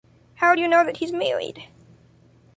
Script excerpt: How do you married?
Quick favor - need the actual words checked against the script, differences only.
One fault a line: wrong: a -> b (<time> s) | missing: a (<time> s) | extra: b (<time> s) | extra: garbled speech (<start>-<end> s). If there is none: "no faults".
extra: know that he's (0.7 s)